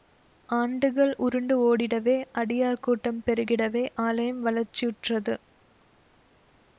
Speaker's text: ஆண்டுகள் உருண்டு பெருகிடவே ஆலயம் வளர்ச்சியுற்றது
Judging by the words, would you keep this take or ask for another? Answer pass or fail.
fail